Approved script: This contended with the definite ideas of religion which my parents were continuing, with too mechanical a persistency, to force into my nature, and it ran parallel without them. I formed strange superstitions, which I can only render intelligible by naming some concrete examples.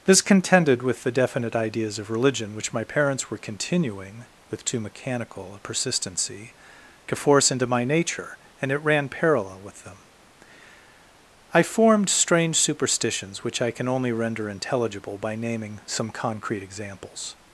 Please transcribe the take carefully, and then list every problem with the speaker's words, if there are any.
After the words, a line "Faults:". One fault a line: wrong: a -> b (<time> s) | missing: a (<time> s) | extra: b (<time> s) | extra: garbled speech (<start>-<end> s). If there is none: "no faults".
This contended with the definite ideas of religion which my parents were continuing, with too mechanical a persistency, to force into my nature, and it ran parallel with them. I formed strange superstitions, which I can only render intelligible by naming some concrete examples.
Faults:
wrong: without -> with (9.6 s)